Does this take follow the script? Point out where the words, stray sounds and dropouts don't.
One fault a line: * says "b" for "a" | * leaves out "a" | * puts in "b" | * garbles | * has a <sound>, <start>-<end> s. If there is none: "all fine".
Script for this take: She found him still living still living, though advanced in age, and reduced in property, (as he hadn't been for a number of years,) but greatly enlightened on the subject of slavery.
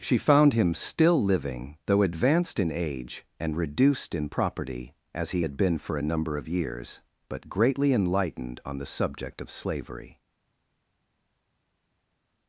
* leaves out "still living"
* says "had" for "hadn't"